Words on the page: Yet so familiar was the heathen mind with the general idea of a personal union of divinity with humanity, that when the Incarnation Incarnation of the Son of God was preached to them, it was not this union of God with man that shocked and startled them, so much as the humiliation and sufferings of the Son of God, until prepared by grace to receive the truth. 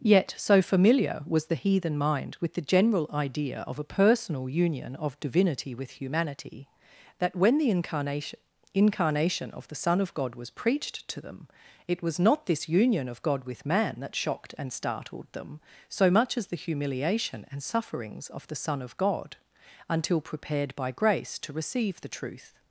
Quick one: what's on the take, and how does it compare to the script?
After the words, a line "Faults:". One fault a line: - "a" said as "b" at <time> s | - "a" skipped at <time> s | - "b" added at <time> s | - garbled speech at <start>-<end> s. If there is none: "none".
Yet so familiar was the heathen mind with the general idea of a personal union of divinity with humanity, that when the Incarnation Incarnation of the Son of God was preached to them, it was not this union of God with man that shocked and startled them, so much as the humiliation and sufferings of the Son of God, until prepared by grace to receive the truth.
Faults:
none